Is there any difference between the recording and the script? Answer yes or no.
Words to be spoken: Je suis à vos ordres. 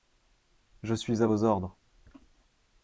no